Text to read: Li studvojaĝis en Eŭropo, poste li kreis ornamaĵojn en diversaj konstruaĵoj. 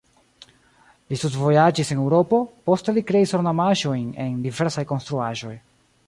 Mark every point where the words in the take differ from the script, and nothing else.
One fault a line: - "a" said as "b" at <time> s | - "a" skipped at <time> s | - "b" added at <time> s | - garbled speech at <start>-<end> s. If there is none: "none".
none